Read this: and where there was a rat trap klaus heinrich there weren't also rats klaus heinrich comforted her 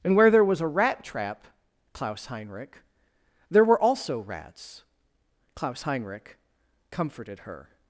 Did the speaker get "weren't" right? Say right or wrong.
wrong